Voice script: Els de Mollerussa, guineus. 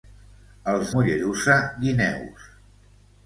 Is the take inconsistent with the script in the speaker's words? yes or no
yes